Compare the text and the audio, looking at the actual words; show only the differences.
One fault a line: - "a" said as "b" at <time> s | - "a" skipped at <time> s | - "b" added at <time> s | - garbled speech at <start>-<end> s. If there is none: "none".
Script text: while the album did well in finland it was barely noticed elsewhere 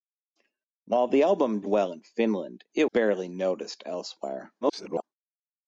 - "did" skipped at 1.6 s
- "was" skipped at 2.8 s
- garbled speech at 4.6-5.0 s